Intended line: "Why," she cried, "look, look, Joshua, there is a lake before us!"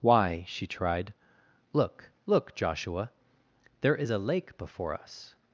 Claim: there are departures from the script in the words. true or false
true